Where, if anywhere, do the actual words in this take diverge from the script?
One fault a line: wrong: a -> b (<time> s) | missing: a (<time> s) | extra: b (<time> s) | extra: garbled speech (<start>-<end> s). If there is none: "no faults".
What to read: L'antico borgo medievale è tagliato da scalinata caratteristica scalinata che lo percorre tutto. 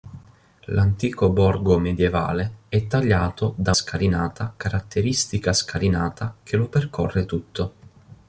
no faults